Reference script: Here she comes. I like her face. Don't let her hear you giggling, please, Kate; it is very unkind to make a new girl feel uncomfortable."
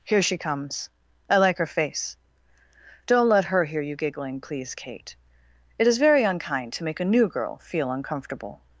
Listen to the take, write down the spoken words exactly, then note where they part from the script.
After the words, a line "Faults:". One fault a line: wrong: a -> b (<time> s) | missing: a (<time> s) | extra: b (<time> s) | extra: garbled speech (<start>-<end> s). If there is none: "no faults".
Here she comes. I like her face. Don't let her hear you giggling, please, Kate; it is very unkind to make a new girl feel uncomfortable."
Faults:
no faults